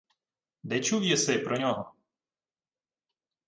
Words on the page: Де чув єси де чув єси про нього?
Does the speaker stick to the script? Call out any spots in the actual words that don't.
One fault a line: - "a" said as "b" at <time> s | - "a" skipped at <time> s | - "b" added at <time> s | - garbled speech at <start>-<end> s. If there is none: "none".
- "де чув єси" skipped at 1.4 s